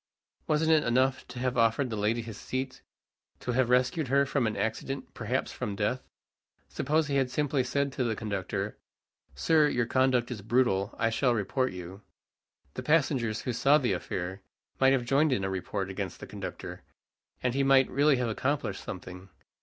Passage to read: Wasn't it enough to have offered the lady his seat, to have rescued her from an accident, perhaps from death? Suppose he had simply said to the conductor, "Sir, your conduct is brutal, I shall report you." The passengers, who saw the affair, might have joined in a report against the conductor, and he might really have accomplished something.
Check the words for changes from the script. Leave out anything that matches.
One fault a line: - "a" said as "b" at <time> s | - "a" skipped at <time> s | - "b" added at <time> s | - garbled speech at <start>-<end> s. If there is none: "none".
none